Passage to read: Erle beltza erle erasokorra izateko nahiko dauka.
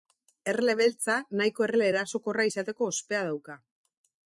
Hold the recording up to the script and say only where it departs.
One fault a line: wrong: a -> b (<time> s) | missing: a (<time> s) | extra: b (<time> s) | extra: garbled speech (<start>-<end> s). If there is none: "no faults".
extra: nahiko (1.4 s)
wrong: nahiko -> ospea (2.9 s)